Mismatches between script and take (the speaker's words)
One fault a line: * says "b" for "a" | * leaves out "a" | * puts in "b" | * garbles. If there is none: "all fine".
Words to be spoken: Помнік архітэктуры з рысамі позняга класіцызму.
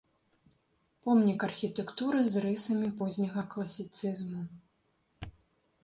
all fine